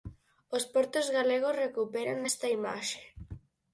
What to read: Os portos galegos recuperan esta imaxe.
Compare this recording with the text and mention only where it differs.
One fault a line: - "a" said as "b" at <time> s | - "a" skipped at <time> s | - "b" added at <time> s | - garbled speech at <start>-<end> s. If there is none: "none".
none